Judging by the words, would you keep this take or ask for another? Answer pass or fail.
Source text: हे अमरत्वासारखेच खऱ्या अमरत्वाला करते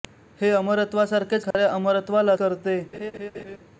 pass